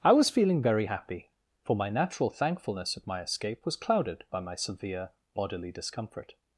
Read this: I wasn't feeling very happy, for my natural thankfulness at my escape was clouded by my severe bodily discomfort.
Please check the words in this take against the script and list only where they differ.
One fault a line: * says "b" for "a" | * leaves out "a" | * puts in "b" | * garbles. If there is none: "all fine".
* says "was" for "wasn't"